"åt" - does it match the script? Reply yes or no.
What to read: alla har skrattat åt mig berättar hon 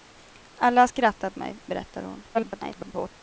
no